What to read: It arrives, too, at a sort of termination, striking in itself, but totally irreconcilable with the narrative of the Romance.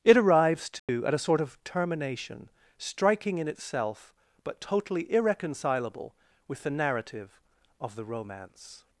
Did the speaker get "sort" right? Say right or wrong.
right